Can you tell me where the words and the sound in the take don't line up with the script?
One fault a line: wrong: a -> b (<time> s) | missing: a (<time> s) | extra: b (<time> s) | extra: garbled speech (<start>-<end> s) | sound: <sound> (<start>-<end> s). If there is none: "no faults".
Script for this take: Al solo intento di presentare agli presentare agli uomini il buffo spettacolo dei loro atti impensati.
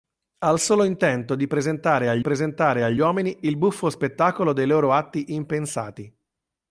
no faults